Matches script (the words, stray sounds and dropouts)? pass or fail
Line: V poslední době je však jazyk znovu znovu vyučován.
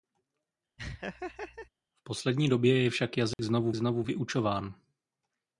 fail